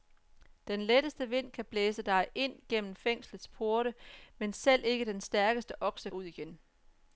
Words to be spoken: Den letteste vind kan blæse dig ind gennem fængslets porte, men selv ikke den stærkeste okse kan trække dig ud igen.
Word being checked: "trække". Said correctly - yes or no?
no